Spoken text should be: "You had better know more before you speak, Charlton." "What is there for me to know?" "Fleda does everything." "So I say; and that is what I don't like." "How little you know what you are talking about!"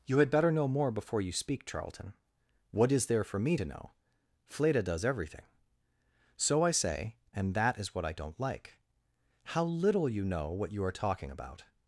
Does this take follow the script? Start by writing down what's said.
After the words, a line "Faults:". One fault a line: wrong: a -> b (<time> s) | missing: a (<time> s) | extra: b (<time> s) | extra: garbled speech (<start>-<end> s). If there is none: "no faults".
"You had better know more before you speak, Charlton." "What is there for me to know?" "Fleda does everything." "So I say; and that is what I don't like." "How little you know what you are talking about!"
Faults:
no faults